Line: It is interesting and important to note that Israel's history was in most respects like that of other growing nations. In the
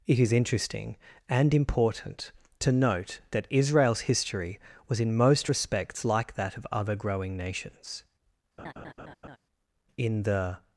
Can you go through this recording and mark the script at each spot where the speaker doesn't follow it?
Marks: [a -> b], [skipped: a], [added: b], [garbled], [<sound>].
It is interesting and important to note that Israel's history was in most respects like that of other growing nations. [laugh] In the